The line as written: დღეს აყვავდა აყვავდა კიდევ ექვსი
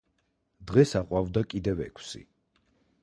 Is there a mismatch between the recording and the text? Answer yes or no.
yes